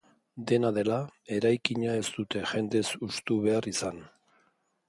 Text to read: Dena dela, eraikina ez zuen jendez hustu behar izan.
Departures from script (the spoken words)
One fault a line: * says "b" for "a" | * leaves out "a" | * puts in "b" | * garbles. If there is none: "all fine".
* says "dute" for "zuen"